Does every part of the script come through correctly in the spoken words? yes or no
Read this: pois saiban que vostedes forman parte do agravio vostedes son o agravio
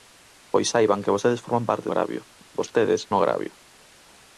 no